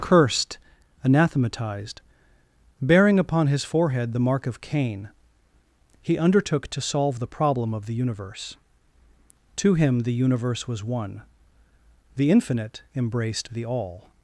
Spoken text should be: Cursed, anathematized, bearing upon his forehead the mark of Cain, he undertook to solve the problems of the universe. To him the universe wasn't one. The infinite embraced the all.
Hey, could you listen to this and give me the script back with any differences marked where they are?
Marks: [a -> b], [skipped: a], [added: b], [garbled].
Cursed, anathematized, bearing upon his forehead the mark of Cain, he undertook to solve the [problems -> problem] of the universe. To him the universe [wasn't -> was] one. The infinite embraced the all.